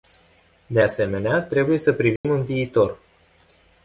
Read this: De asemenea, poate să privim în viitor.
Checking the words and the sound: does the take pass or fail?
fail